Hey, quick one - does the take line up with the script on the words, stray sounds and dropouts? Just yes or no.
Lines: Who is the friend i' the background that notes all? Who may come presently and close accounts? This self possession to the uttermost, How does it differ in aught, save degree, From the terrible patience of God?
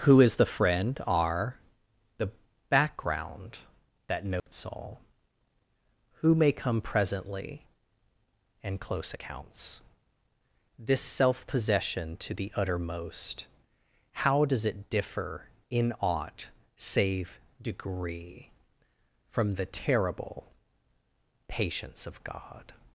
no